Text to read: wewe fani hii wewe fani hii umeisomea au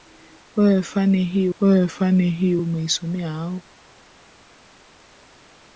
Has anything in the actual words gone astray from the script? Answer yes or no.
no